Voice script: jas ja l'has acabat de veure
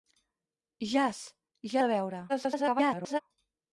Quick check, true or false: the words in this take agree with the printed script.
false